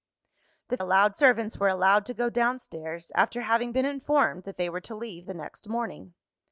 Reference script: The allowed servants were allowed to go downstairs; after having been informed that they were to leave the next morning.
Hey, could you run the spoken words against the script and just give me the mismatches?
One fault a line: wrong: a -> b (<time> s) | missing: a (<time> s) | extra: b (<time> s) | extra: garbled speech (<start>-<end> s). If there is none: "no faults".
no faults